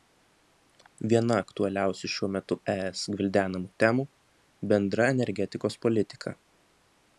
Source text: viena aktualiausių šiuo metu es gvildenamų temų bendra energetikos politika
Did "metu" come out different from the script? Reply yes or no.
no